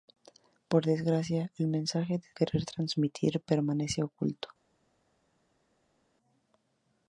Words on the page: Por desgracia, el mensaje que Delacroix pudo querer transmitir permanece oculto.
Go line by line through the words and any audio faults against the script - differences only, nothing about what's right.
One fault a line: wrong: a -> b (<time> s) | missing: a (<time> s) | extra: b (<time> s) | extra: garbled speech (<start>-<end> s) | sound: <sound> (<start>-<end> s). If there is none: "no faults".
missing: Delacroix pudo (2.3 s)